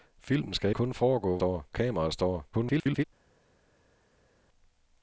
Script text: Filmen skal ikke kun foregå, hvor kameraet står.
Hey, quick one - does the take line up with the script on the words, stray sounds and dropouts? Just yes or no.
no